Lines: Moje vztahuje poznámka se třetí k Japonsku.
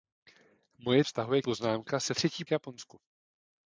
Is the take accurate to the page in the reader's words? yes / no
yes